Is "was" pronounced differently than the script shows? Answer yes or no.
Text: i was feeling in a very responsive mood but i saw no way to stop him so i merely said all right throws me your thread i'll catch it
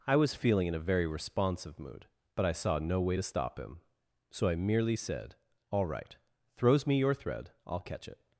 no